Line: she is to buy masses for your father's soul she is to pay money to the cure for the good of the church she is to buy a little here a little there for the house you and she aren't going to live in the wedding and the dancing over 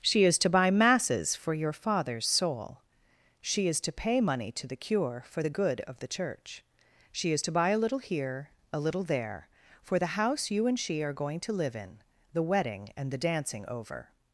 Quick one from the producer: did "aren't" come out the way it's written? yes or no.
no